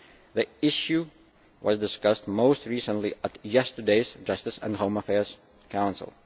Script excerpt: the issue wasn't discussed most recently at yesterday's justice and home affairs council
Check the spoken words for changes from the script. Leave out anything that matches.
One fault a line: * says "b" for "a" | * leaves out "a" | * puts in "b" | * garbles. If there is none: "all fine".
* says "was" for "wasn't"